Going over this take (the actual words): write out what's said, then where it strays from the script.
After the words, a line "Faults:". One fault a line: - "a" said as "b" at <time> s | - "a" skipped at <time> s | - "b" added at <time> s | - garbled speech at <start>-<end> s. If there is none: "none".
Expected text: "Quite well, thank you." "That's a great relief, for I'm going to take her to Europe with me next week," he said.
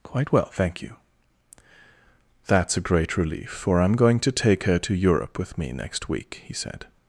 "Quite well, thank you." "That's a great relief, for I'm going to take her to Europe with me next week," he said.
Faults:
none